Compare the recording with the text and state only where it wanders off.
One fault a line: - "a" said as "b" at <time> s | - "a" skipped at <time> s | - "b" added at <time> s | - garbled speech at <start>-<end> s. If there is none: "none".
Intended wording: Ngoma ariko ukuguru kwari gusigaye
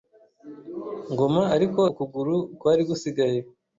none